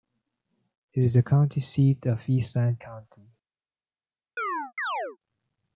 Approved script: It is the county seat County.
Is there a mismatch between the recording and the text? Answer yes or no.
yes